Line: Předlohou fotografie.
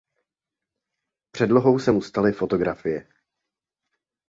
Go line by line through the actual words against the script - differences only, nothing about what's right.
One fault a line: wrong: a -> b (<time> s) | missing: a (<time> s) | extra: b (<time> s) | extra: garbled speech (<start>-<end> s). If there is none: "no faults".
extra: se mu staly (1.8 s)